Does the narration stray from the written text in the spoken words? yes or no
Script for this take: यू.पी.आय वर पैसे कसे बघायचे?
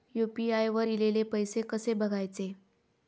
yes